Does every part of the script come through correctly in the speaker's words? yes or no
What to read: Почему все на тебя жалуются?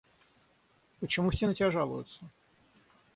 yes